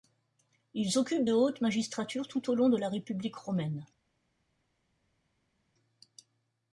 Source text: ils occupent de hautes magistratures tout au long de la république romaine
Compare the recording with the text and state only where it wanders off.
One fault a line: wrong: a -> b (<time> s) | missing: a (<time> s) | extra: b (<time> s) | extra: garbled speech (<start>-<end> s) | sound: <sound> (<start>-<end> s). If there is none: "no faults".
no faults